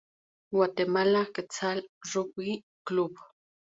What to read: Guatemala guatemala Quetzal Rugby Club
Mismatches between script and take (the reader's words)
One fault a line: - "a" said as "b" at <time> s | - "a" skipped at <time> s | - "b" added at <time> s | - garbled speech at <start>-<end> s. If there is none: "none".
- "guatemala" skipped at 1.3 s